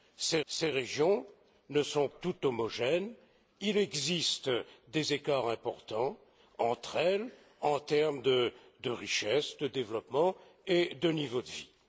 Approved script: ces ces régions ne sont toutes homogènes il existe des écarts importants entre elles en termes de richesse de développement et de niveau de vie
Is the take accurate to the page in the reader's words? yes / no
yes